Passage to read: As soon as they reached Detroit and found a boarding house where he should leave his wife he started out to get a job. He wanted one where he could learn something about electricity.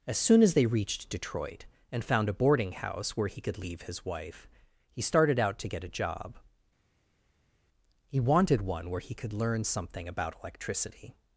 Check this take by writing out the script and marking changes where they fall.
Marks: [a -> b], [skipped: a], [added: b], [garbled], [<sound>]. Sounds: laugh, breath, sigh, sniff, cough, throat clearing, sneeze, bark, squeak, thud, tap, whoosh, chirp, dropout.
As soon as they reached Detroit and found a boarding house where he [should -> could] leave his wife he started out to get a job. He wanted one where he could learn something about electricity.